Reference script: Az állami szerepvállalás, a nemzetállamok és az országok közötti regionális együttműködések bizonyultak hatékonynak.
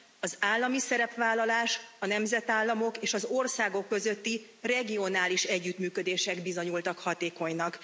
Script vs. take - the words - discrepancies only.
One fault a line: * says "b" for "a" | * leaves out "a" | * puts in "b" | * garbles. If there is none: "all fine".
all fine